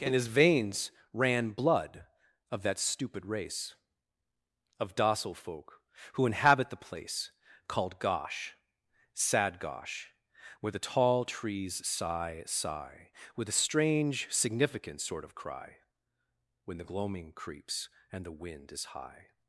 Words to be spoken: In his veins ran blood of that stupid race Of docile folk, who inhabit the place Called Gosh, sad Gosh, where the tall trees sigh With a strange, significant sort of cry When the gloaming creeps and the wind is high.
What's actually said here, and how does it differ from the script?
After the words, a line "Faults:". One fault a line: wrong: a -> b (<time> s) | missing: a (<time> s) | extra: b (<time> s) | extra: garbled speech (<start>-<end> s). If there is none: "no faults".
In his veins ran blood of that stupid race Of docile folk, who inhabit the place Called Gosh, sad Gosh, where the tall trees sigh sigh With a strange, significant sort of cry When the gloaming creeps and the wind is high.
Faults:
extra: sigh (12.5 s)